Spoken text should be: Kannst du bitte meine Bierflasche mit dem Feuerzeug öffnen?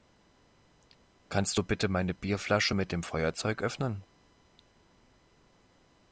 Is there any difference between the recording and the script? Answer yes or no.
no